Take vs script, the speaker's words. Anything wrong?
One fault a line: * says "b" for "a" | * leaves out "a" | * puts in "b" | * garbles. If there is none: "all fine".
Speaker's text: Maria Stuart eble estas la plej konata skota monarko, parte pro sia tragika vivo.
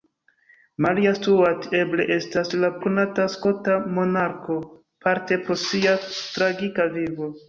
* leaves out "plej"